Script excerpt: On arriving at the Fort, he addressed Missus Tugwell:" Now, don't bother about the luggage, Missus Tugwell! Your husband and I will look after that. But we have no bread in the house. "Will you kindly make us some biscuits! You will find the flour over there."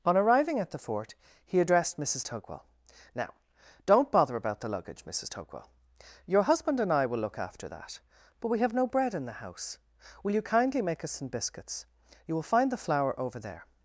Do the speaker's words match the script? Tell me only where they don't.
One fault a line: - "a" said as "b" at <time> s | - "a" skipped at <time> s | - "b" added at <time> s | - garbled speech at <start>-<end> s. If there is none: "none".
none